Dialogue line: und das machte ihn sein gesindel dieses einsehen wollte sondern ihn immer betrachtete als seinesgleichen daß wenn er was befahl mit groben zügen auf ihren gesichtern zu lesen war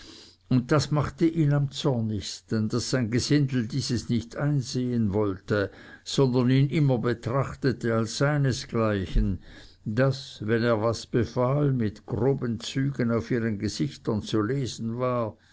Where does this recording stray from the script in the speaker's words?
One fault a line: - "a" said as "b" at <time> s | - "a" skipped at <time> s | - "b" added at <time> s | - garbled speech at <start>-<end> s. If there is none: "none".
- "am zornigsten daß" added at 1.5 s
- "nicht" added at 4.1 s